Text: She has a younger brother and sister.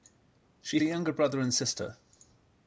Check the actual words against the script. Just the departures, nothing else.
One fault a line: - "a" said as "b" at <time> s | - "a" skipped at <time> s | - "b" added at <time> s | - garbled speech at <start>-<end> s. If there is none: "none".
- "has" skipped at 0.8 s